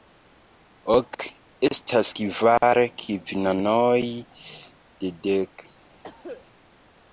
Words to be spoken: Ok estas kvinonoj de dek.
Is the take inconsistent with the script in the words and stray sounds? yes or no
yes